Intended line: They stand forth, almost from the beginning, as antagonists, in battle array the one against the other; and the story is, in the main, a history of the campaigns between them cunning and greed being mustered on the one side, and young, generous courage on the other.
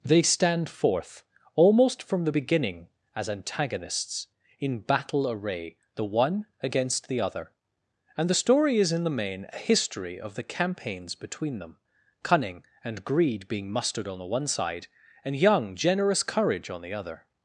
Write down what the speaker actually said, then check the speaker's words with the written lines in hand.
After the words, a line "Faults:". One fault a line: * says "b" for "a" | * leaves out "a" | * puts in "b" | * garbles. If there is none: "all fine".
They stand forth, almost from the beginning, as antagonists, in battle array the one against the other; and the story is, in the main, a history of the campaigns between them cunning and greed being mustered on the one side, and young, generous courage on the other.
Faults:
all fine